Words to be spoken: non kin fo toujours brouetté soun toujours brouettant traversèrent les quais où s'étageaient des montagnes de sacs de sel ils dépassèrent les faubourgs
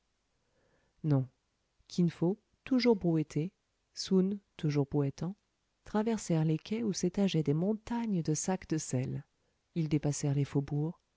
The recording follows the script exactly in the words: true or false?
true